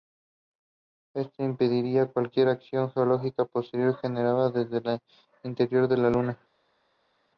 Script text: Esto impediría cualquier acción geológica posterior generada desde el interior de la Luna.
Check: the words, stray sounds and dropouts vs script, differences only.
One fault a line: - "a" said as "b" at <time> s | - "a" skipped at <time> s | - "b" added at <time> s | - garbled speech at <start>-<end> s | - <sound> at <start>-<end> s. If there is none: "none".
none